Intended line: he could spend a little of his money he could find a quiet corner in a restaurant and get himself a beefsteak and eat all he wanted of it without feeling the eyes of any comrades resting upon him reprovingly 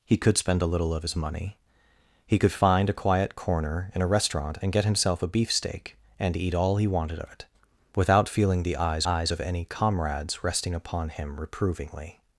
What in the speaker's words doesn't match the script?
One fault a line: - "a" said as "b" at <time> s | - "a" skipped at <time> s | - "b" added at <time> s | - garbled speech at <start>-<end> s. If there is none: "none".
- "eyes" added at 9.0 s